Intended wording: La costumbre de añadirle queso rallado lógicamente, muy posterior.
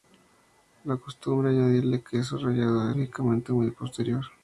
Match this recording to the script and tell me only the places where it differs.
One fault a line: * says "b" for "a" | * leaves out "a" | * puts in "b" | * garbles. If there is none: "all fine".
all fine